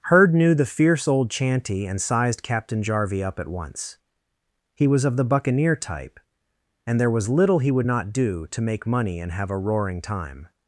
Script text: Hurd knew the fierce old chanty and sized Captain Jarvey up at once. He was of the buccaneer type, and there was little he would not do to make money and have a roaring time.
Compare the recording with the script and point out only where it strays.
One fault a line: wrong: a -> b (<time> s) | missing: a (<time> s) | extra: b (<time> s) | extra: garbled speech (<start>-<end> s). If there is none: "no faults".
no faults